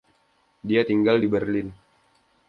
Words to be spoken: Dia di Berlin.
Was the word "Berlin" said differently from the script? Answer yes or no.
no